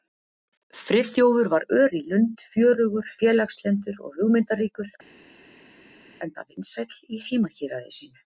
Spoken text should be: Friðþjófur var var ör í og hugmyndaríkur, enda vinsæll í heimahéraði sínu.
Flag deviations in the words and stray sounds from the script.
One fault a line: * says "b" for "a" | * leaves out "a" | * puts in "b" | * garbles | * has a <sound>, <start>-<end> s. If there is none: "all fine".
* leaves out "var"
* puts in "lund fjörugur félagslyndur"